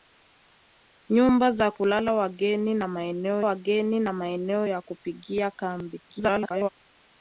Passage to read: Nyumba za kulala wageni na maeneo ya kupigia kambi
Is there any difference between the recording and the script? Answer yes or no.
yes